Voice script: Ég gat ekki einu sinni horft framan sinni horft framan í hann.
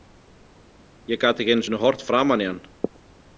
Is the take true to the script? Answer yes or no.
no